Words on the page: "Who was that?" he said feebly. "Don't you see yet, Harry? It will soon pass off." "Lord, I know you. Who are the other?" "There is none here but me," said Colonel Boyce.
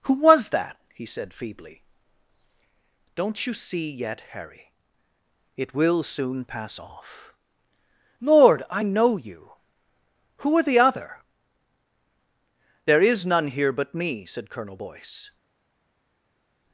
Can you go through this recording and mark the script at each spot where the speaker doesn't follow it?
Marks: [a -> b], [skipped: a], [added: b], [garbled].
"Who was that?" he said feebly. "Don't you see yet, Harry? It will soon pass off." "Lord, I know you. Who are the other?" "There is none here but me," said Colonel Boyce.